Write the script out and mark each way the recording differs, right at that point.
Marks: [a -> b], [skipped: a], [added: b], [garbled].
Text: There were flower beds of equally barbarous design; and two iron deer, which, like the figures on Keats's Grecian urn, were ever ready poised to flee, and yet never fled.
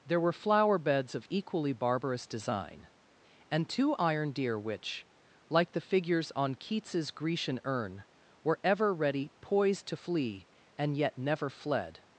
There were flower beds of equally barbarous design; and two iron deer, which, like the figures on Keats's Grecian urn, were ever ready poised to flee, and yet never fled.